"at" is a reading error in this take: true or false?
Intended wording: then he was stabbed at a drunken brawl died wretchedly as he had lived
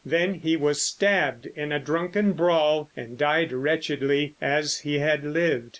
true